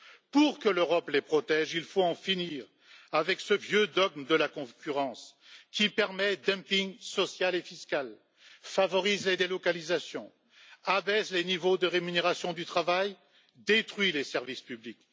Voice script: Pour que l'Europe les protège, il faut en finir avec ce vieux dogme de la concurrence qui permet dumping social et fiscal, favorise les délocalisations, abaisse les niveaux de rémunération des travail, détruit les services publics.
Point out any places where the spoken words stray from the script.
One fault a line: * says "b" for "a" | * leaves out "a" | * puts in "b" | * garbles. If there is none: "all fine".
* says "du" for "des"